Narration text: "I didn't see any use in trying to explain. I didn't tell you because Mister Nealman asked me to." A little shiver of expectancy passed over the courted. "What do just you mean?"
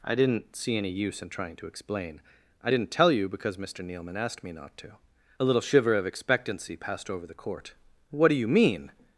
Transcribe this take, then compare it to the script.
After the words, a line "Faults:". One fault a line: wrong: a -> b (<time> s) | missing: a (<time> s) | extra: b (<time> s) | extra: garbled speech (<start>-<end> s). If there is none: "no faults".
"I didn't see any use in trying to explain. I didn't tell you because Mister Nealman asked me not to." A little shiver of expectancy passed over the court. "What do you mean?"
Faults:
extra: not (4.5 s)
wrong: courted -> court (7.3 s)
missing: just (8.4 s)